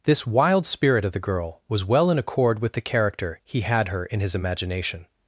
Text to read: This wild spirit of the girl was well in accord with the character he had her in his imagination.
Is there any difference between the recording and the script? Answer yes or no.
no